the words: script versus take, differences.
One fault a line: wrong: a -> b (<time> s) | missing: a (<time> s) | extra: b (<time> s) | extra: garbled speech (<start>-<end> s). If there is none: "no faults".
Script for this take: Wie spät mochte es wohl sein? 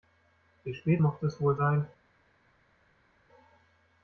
no faults